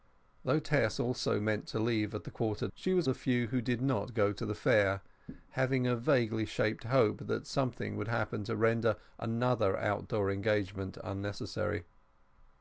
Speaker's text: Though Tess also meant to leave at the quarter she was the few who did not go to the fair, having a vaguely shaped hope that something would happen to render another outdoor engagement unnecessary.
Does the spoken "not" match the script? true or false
true